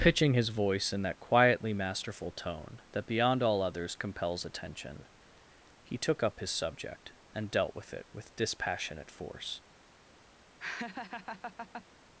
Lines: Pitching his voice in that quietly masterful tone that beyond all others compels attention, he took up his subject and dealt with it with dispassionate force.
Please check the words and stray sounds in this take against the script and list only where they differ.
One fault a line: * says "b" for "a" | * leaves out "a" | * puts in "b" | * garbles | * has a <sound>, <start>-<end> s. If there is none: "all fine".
* has a laugh, 10.6-11.9 s